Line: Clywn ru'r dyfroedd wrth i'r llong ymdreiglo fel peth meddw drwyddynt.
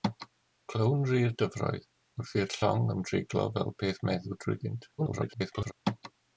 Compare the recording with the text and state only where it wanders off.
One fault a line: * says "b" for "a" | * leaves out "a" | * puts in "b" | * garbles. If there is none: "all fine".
* garbles